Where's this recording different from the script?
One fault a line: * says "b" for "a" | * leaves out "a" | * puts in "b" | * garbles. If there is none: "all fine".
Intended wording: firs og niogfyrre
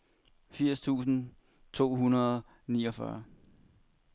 * puts in "tusind to hundrede"